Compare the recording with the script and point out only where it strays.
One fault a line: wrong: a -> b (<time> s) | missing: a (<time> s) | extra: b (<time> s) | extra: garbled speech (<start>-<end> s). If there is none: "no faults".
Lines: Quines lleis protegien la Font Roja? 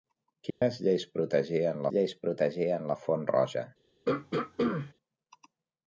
extra: lleis protegien (1.9 s)